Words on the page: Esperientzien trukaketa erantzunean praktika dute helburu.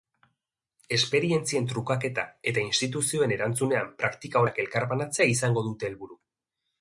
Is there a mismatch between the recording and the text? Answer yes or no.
yes